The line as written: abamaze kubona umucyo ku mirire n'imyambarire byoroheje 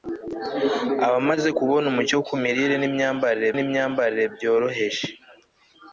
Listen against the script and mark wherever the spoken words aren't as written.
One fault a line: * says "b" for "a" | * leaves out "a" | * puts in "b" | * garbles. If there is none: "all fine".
* puts in "n'imyambarire"